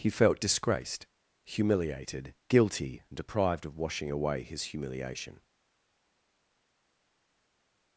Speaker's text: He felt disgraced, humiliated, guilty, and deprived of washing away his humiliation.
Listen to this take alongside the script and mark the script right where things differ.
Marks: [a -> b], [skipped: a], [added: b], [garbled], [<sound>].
He felt disgraced, humiliated, guilty, and deprived of washing away his humiliation.